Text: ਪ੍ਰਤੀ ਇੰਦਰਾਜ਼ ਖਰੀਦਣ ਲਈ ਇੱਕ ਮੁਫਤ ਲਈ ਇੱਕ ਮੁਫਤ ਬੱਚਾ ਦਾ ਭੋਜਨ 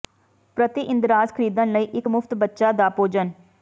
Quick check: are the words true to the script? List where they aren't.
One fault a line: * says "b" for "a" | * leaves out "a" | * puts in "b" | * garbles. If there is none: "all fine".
* leaves out "ਲਈ ਇੱਕ ਮੁਫਤ"